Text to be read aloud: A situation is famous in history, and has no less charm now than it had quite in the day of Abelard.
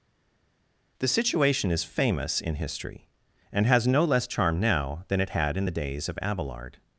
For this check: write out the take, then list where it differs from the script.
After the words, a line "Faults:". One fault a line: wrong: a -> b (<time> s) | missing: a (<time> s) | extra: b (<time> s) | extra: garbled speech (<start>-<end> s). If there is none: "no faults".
The situation is famous in history, and has no less charm now than it had in the days of Abelard.
Faults:
wrong: A -> The (1.0 s)
missing: quite (5.6 s)
wrong: day -> days (5.7 s)